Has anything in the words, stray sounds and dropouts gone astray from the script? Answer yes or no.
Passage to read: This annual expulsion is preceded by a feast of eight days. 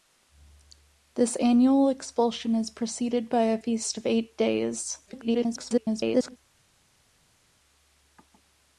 yes